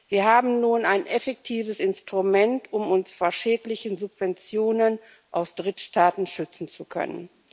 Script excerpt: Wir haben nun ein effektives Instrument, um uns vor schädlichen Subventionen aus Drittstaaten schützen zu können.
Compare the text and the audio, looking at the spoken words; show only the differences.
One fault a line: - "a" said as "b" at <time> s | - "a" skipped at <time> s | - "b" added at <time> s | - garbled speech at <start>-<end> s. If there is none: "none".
none